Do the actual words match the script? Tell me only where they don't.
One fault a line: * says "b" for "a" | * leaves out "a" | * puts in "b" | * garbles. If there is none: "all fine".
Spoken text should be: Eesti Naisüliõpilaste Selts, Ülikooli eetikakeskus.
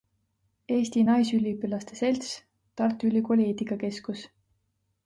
* puts in "Tartu"